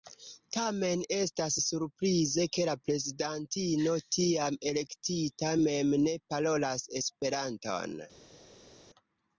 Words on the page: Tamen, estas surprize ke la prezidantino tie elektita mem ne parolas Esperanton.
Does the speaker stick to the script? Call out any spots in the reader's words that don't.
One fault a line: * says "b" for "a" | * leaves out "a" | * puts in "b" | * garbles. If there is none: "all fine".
* says "tiam" for "tie"